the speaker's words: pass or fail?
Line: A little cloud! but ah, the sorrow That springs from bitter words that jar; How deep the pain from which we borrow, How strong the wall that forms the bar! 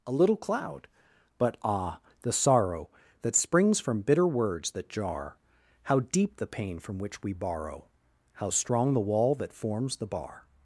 pass